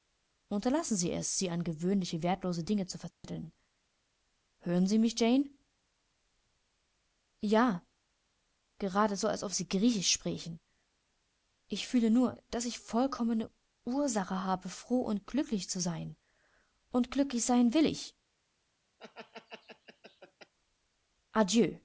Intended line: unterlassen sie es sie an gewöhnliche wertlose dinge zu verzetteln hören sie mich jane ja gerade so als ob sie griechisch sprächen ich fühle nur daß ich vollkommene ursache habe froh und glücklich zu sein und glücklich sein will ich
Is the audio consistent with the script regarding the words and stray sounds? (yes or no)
no